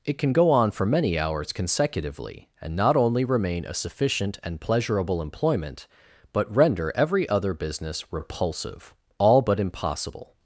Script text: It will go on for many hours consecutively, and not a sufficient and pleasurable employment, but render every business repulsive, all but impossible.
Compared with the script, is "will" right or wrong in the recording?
wrong